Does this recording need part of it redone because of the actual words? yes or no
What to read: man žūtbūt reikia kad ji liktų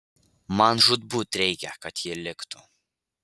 no